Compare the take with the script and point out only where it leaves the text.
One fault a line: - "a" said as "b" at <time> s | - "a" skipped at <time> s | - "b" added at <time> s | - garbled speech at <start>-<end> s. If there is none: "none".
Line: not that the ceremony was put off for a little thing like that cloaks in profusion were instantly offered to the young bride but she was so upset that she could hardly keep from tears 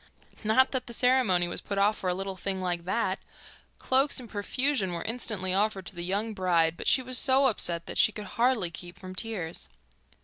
none